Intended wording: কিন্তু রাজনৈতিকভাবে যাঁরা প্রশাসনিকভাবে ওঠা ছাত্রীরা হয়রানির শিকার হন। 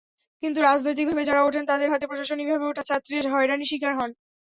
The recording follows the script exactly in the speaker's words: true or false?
false